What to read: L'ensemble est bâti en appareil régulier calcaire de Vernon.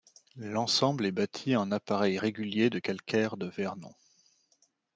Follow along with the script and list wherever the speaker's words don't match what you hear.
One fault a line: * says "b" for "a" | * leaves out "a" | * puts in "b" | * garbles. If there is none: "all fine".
* puts in "de"